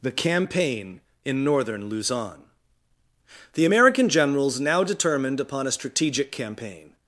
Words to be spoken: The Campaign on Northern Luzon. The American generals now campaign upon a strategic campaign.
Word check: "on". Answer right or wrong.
wrong